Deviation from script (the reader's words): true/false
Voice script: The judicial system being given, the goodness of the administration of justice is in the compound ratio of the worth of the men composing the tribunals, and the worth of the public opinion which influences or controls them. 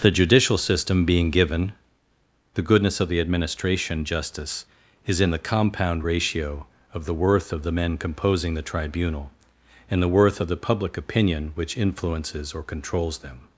true